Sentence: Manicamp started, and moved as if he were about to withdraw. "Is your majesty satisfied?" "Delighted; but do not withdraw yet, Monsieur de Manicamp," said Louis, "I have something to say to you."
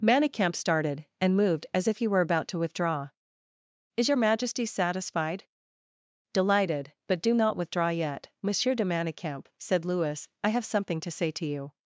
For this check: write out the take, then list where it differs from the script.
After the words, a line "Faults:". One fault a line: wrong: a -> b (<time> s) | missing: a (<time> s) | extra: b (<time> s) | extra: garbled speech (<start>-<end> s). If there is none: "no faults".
Manicamp started, and moved as if he were about to withdraw. "Is your majesty satisfied?" "Delighted; but do not withdraw yet, Monsieur de Manicamp," said Louis, "I have something to say to you."
Faults:
no faults